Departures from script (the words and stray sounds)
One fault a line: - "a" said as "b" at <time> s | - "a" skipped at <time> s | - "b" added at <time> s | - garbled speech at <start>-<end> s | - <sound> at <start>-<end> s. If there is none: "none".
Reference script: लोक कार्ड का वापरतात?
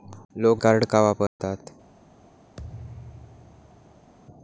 - dropout at 1.3-1.4 s
- thud at 2.6-4.1 s